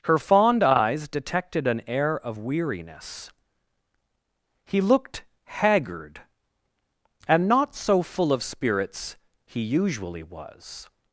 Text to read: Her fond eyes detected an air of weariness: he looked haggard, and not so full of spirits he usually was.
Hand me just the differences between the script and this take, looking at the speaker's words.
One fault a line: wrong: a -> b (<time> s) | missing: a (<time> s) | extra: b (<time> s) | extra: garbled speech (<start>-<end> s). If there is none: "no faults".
no faults